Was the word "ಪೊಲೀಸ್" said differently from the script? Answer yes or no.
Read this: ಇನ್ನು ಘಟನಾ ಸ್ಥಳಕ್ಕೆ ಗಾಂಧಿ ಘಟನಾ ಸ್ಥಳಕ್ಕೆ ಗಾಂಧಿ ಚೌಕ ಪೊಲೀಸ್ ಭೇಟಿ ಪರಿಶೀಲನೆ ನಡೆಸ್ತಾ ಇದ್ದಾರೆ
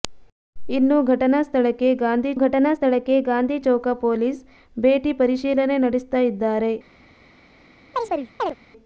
no